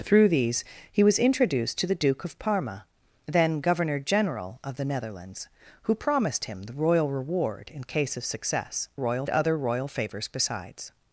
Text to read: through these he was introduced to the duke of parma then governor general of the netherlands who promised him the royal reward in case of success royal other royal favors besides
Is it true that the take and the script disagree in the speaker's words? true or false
false